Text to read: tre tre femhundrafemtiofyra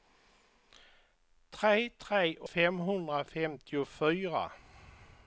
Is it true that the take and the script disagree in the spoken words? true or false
false